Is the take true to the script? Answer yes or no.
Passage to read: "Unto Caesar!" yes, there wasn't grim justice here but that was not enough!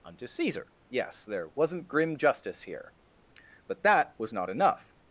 yes